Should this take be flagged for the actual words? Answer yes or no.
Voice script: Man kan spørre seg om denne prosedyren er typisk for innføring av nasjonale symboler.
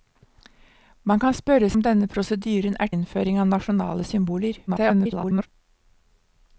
yes